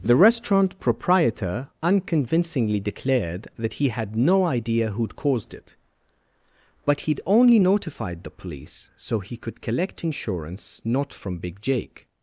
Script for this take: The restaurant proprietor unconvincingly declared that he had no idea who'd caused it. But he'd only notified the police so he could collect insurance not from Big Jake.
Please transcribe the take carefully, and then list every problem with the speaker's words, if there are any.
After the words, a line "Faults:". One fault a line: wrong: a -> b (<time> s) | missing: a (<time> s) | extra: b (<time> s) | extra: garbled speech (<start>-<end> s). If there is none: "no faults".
The restaurant proprietor unconvincingly declared that he had no idea who'd caused it. But he'd only notified the police so he could collect insurance not from Big Jake.
Faults:
no faults